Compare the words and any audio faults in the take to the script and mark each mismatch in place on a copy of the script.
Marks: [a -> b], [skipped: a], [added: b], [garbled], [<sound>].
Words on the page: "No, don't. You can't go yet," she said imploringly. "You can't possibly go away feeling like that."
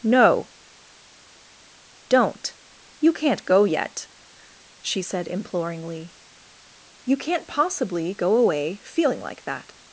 "No, don't. You can't go yet," she said imploringly. "You can't possibly go away feeling like that."